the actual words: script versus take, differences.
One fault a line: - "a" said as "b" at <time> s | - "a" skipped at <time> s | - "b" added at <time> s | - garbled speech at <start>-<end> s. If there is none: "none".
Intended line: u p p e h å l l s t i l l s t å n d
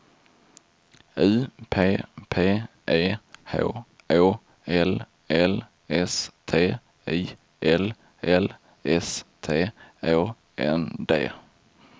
none